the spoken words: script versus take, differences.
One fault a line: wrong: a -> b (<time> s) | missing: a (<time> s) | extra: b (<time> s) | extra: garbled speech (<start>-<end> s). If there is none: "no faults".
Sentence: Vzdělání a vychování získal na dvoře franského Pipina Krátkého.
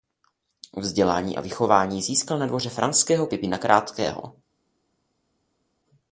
no faults